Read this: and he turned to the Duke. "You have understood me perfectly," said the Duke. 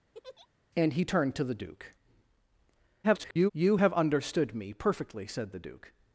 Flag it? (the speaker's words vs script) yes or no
yes